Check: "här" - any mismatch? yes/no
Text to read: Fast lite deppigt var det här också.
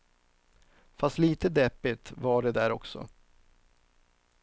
yes